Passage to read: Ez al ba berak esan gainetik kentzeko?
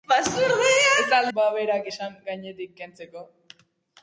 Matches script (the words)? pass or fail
pass